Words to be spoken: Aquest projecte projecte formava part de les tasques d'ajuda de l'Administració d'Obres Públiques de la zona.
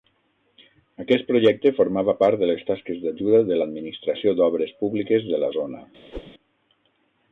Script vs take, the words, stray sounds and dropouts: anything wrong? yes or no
yes